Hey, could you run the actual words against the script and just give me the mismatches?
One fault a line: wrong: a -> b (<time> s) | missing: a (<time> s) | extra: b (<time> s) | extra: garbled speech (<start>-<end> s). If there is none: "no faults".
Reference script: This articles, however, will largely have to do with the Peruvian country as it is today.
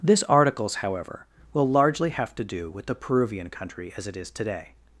no faults